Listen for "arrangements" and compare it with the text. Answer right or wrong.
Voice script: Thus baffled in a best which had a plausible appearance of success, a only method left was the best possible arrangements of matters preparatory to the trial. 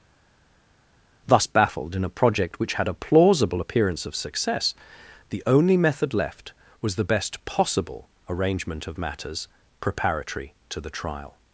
wrong